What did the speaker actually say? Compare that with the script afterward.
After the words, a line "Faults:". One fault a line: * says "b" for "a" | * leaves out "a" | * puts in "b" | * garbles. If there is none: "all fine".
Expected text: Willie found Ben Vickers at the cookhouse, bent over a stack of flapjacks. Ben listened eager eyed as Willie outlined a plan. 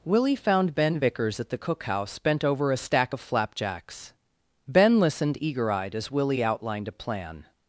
Willie found Ben Vickers at the cookhouse, bent over a stack of flapjacks. Ben listened eager eyed as Willie outlined a plan.
Faults:
all fine